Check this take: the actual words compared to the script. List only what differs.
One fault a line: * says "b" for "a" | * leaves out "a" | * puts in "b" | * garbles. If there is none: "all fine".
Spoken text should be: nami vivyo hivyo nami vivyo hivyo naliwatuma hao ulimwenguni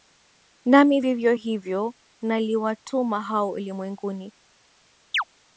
* leaves out "nami vivyo hivyo"